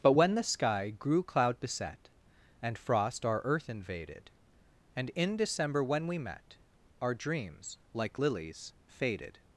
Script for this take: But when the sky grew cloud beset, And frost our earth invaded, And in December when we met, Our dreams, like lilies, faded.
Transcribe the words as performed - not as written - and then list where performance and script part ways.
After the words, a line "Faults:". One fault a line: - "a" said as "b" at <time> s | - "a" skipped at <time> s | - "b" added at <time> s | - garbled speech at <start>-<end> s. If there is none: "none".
But when the sky grew cloud beset, And frost our earth invaded, And in December when we met, Our dreams, like lilies, faded.
Faults:
none